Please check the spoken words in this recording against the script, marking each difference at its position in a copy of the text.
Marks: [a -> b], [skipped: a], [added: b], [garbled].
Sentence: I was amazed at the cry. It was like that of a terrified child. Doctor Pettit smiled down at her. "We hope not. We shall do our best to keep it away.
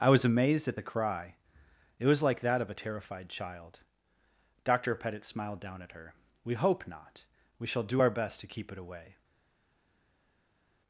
I was amazed at the cry. It was like that of a terrified child. Doctor Pettit smiled down at her. "We hope not. We shall do our best to keep it away.